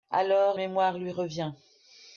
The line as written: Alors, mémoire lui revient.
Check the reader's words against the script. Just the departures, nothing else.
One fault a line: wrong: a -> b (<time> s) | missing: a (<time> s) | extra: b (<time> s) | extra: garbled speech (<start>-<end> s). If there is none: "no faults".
no faults